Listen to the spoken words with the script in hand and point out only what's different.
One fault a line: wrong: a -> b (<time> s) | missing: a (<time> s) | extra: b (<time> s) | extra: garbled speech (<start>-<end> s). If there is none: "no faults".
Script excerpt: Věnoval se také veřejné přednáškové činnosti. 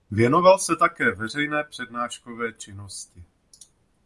no faults